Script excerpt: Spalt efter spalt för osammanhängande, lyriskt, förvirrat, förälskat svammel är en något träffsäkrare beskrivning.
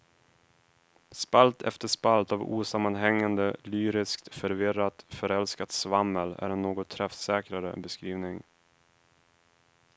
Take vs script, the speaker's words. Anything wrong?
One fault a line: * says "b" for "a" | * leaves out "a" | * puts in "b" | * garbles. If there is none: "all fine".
* says "av" for "för"